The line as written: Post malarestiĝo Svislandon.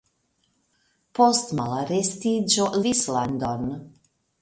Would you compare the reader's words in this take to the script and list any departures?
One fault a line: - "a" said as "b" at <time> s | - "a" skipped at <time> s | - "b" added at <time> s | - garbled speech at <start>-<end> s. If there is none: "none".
none